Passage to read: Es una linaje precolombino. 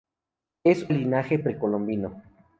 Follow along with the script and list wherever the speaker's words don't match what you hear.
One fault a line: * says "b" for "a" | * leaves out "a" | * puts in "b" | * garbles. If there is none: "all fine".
* leaves out "una"